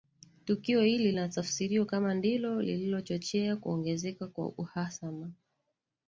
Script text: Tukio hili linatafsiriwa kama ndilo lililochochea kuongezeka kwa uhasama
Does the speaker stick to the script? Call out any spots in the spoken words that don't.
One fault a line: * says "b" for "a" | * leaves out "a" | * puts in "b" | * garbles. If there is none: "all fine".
all fine